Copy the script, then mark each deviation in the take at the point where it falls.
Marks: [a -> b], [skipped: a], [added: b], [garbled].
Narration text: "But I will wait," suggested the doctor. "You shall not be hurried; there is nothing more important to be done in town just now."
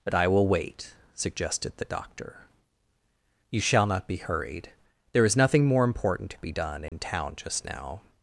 "But I will wait," suggested the doctor. "You shall not be hurried; there is nothing more important to be done in town just now."